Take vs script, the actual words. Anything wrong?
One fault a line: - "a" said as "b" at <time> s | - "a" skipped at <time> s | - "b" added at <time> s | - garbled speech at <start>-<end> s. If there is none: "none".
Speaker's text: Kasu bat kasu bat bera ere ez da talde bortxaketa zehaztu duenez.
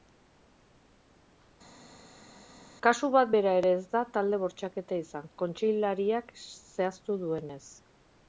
- "kasu bat" skipped at 3.3 s
- "izan kontseilariak" added at 5.1 s